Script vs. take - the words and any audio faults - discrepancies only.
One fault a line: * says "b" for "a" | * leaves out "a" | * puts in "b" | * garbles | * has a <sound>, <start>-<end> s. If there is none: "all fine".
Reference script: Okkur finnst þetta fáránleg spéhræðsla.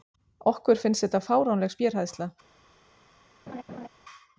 * has a laugh, 3.5-3.9 s